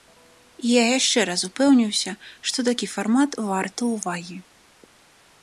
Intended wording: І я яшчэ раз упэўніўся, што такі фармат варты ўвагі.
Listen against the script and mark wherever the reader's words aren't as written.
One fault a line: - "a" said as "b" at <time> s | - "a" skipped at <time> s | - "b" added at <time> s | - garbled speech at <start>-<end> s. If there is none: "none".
none